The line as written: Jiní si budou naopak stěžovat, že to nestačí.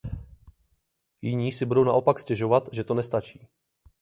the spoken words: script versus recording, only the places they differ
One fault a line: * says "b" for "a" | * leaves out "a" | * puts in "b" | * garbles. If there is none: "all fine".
all fine